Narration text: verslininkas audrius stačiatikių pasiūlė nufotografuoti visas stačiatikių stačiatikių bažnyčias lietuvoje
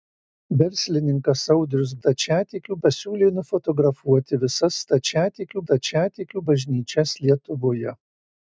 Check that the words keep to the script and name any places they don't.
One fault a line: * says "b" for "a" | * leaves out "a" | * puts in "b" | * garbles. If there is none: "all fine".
all fine